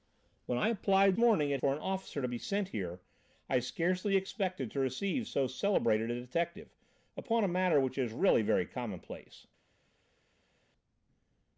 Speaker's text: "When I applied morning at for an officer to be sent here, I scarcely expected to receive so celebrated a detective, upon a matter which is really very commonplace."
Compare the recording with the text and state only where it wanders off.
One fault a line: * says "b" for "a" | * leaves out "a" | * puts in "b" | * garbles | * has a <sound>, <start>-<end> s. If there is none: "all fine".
all fine